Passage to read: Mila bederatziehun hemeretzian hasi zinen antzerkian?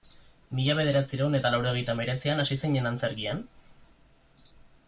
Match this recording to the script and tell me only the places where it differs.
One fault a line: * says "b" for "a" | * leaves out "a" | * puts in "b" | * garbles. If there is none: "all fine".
* puts in "eta laurogeita"